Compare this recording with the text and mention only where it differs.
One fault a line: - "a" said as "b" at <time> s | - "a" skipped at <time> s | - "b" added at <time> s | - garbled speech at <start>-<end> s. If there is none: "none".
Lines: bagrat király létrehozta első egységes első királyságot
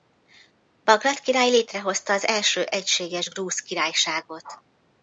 - "az" added at 2.1 s
- "első" said as "grúz" at 3.3 s